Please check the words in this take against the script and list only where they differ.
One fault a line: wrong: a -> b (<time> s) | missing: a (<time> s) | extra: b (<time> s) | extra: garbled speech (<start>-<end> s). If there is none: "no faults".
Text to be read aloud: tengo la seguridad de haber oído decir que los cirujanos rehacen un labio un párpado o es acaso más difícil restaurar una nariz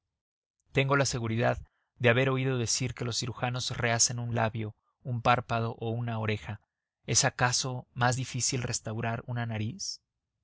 extra: una oreja (5.9 s)